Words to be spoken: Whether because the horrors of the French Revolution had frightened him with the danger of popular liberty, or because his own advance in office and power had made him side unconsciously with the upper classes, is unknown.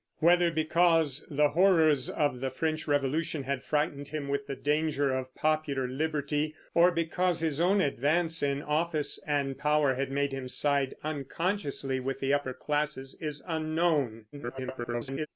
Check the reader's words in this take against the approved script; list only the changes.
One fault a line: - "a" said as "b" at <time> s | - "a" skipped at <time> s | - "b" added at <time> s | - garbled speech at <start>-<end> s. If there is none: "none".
- garbled speech at 14.3-15.3 s